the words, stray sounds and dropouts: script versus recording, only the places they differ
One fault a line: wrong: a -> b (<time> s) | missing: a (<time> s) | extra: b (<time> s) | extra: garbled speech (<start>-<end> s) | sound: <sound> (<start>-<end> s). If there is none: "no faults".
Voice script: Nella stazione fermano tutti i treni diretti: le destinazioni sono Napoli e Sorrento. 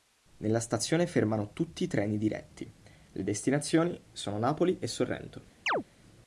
sound: chirp (5.7-5.8 s)